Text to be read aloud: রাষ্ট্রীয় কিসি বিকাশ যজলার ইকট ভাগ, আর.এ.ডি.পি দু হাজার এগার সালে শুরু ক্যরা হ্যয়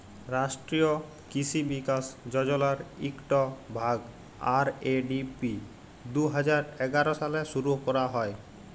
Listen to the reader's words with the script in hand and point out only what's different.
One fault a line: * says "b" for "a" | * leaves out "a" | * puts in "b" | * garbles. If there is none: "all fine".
all fine